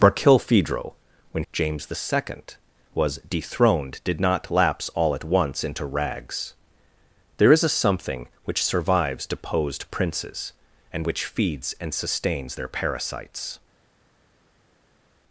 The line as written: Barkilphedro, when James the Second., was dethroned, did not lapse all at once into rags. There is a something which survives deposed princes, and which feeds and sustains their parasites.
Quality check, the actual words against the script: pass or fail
pass